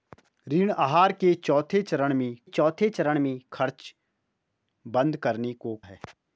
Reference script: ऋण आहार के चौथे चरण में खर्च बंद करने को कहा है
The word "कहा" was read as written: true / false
false